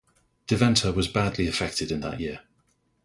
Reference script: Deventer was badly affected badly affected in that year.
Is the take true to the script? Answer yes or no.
no